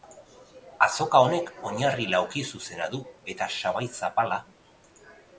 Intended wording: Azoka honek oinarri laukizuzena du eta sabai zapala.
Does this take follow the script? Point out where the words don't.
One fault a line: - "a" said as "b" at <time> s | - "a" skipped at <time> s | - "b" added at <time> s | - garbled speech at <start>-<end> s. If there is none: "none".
none